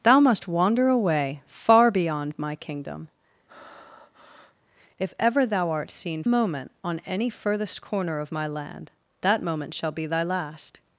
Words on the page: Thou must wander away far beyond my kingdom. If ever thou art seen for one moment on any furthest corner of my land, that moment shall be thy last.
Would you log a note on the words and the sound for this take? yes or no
yes